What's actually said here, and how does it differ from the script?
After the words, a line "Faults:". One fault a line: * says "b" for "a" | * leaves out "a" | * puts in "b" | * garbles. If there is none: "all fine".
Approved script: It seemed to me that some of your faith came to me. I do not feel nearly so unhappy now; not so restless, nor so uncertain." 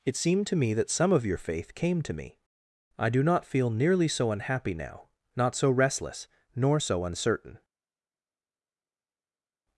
It seemed to me that some of your faith came to me. I do not feel nearly so unhappy now; not so restless, nor so uncertain."
Faults:
all fine